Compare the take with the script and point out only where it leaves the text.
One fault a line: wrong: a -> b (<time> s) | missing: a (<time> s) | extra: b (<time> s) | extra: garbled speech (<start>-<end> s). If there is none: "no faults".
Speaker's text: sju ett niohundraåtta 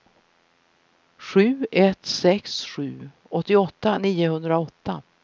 extra: sex sju åttioåtta (2.0 s)